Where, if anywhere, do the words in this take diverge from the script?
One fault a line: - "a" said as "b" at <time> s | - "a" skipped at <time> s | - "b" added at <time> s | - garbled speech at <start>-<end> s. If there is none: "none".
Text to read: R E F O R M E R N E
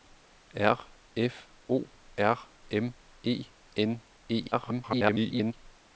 - "E" skipped at 0.9 s
- "R" skipped at 3.4 s
- garbled speech at 4.5-5.5 s